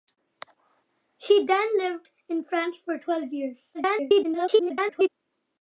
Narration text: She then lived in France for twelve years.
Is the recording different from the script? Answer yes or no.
yes